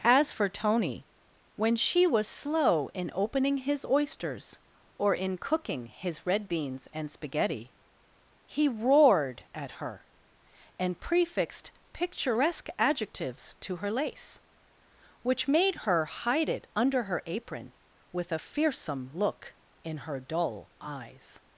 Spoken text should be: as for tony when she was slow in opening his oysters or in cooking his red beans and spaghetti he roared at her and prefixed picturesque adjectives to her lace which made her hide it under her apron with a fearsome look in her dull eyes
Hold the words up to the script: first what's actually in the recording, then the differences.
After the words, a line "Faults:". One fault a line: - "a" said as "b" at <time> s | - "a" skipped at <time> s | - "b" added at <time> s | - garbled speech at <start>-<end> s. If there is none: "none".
as for tony when she was slow in opening his oysters or in cooking his red beans and spaghetti he roared at her and prefixed picturesque adjectives to her lace which made her hide it under her apron with a fearsome look in her dull eyes
Faults:
none